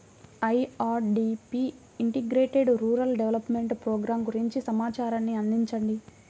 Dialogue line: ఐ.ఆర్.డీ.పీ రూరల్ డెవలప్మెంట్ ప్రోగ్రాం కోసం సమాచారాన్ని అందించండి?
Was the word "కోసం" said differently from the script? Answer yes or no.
yes